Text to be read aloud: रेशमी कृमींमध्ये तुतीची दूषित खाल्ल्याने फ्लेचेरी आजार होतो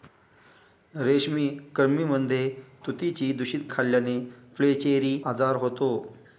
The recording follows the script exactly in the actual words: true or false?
true